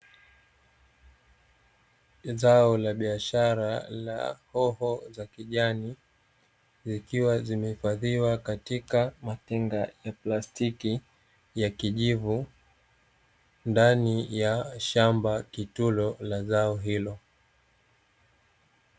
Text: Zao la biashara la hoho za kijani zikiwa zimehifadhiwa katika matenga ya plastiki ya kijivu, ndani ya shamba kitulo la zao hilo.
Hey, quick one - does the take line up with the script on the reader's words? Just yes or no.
yes